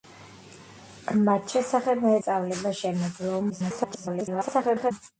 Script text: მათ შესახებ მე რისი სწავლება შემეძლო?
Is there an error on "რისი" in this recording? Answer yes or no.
yes